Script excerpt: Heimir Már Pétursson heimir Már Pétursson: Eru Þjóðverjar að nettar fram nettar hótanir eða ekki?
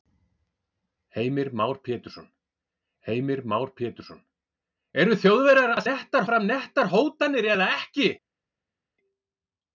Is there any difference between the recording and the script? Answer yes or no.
no